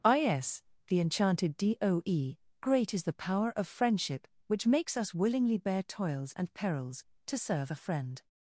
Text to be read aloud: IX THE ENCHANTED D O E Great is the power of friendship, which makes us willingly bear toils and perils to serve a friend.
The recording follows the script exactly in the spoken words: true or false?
false